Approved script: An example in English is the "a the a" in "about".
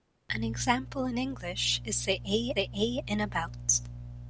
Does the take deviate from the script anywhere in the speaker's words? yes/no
no